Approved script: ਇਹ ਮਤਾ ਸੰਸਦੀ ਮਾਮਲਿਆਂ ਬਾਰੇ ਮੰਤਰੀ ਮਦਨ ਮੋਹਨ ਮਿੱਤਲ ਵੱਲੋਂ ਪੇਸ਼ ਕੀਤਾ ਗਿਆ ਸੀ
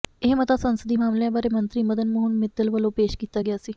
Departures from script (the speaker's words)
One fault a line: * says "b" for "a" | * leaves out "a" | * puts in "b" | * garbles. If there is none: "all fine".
all fine